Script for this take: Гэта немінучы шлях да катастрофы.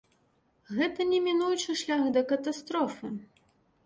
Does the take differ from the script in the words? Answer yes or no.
no